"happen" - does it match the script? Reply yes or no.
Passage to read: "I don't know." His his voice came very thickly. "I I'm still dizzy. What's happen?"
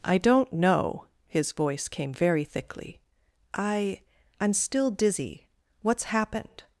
no